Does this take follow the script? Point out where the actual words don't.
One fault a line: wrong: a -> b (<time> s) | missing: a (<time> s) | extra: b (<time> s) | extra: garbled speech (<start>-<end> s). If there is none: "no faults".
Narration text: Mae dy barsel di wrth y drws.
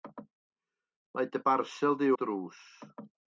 missing: wrth (2.1 s)